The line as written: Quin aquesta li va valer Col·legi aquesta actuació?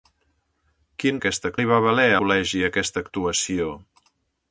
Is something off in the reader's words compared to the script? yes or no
no